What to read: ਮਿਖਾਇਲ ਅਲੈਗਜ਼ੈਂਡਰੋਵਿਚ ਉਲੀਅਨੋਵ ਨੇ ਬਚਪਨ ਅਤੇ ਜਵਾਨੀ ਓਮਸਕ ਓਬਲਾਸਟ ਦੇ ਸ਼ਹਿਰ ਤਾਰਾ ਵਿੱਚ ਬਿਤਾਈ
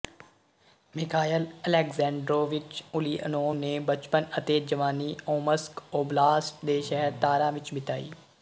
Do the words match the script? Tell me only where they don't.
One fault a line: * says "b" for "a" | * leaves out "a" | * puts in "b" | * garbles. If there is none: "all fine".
all fine